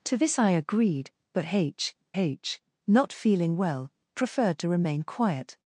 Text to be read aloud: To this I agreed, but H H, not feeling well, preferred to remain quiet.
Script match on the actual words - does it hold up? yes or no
yes